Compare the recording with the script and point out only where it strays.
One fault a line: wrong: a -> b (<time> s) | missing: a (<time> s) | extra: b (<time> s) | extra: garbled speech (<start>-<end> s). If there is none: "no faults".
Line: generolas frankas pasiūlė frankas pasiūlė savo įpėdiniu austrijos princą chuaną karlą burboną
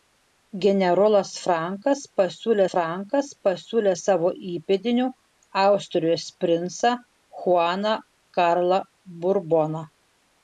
no faults